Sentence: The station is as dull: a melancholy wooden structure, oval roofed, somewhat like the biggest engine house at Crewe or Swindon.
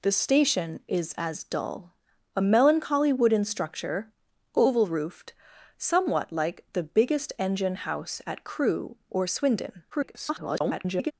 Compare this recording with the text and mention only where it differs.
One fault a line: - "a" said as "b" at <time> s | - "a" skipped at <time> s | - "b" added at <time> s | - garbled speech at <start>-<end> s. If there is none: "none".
- garbled speech at 9.9-11.1 s